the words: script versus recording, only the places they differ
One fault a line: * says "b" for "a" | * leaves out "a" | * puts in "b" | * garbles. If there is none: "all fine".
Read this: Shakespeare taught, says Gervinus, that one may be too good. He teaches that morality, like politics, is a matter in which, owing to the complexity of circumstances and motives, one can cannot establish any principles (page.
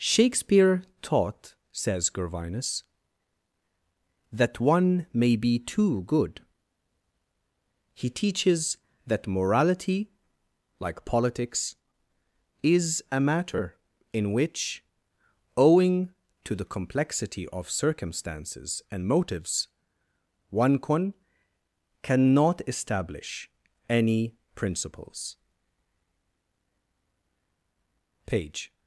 all fine